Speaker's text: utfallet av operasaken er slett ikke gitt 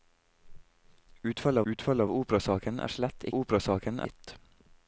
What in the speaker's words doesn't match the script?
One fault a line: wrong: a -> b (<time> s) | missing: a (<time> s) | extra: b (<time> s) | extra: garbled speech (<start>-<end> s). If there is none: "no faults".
extra: utfallet (1.7 s)
wrong: ikke -> operasaken (3.4 s)